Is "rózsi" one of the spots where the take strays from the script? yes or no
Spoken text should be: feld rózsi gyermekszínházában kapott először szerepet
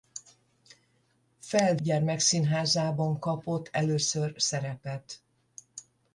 yes